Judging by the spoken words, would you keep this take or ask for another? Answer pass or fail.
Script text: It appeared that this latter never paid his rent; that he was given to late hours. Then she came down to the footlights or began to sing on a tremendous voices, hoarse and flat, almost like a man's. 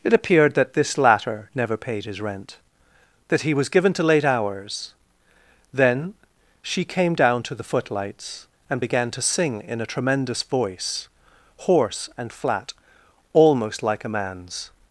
fail